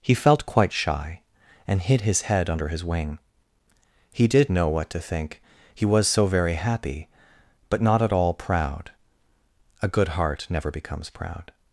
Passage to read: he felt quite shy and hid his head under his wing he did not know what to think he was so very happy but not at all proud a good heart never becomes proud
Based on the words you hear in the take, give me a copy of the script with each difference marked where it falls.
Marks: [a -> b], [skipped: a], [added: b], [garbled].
he felt quite shy and hid his head under his wing he did [skipped: not] know what to think he was so very happy but not at all proud a good heart never becomes proud